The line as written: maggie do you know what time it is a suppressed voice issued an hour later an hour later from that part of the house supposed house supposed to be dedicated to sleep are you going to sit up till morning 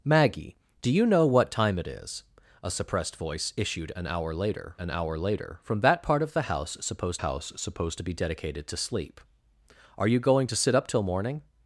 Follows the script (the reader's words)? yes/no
yes